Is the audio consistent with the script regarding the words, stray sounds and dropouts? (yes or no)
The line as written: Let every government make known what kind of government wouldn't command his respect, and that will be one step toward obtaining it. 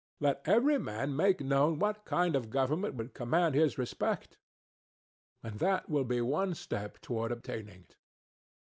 no